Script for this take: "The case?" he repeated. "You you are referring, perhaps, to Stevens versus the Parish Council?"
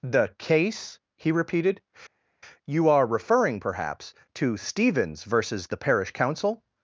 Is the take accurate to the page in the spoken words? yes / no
no